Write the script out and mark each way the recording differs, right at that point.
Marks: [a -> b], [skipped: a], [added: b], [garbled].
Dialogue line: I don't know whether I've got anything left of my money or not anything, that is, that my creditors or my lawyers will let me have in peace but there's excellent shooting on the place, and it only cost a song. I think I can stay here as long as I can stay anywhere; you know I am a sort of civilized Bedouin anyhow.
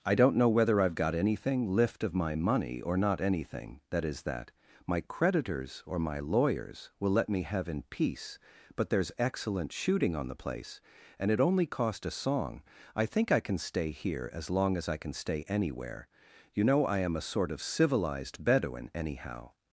I don't know whether I've got anything [left -> lift] of my money or not anything, that is, that my creditors or my lawyers will let me have in peace but there's excellent shooting on the place, and it only cost a song. I think I can stay here as long as I can stay anywhere; you know I am a sort of civilized Bedouin anyhow.